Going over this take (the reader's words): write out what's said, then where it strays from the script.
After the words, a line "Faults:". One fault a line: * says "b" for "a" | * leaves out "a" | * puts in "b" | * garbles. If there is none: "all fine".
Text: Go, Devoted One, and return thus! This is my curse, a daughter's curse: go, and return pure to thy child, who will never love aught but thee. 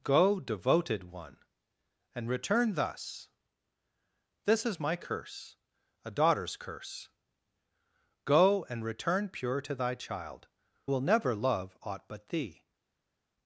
Go, Devoted One, and return thus! This is my curse, a daughter's curse: go, and return pure to thy child, will never love aught but thee.
Faults:
* leaves out "who"